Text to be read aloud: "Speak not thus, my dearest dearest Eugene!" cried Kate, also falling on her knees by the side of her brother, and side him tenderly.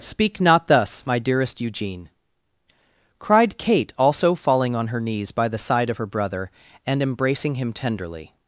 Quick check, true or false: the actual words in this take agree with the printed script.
false